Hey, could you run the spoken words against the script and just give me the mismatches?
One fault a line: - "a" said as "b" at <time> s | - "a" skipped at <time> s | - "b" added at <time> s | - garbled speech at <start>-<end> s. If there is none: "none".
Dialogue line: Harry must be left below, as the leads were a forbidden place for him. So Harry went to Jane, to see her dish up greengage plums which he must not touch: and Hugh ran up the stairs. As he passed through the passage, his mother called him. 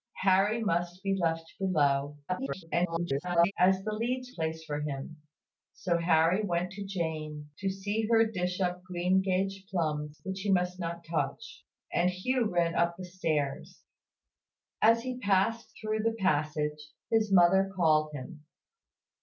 - garbled speech at 2.3-3.5 s
- "were a forbidden" skipped at 4.3 s